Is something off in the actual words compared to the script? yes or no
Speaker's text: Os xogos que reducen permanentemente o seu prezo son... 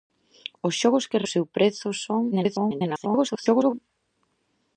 yes